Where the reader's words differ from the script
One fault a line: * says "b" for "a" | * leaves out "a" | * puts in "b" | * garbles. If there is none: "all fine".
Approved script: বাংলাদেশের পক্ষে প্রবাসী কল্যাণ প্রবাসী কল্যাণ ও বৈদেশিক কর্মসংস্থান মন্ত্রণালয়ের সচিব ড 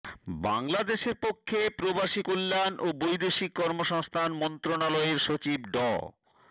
* leaves out "প্রবাসী কল্যাণ"